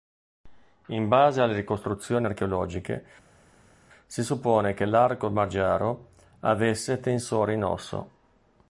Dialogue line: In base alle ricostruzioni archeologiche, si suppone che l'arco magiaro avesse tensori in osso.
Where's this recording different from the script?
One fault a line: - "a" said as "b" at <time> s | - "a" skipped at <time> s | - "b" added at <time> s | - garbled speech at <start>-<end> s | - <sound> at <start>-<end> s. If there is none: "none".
none